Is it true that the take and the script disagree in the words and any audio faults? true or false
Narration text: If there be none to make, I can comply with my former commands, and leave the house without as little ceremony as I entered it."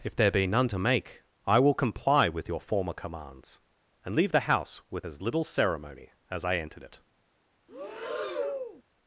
true